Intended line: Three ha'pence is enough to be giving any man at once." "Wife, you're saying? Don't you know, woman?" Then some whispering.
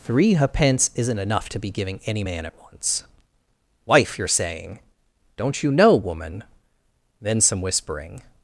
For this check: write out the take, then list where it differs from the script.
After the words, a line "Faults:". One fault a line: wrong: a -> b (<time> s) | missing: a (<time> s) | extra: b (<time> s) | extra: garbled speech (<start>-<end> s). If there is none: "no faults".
Three ha'pence isn't enough to be giving any man at once." "Wife, you're saying? Don't you know, woman?" Then some whispering.
Faults:
wrong: is -> isn't (0.9 s)